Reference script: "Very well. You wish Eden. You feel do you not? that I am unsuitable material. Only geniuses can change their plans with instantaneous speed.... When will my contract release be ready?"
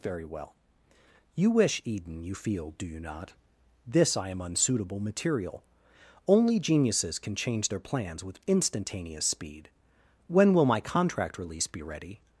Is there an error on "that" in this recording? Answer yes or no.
yes